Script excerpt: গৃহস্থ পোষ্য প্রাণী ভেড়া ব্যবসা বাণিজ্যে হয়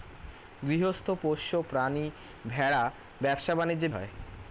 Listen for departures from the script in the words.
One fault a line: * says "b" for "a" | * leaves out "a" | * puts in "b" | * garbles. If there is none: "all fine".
all fine